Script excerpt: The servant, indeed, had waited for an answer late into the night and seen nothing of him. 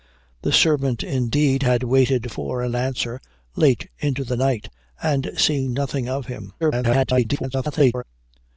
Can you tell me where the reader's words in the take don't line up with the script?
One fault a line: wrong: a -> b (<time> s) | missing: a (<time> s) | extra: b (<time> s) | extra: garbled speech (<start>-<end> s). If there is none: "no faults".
extra: garbled speech (6.6-8.0 s)